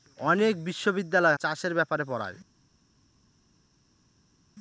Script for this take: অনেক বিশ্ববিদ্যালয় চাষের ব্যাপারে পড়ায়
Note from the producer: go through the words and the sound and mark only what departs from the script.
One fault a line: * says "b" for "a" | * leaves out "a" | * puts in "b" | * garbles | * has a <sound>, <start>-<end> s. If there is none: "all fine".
all fine